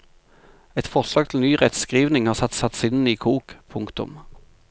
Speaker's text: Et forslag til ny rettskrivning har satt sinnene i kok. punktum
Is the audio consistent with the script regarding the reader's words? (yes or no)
no